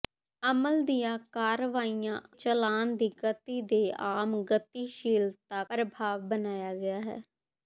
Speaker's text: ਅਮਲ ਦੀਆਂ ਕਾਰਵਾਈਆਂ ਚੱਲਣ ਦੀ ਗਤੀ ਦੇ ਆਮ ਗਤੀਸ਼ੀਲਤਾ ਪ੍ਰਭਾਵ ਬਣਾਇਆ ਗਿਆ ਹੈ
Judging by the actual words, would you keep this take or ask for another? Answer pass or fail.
pass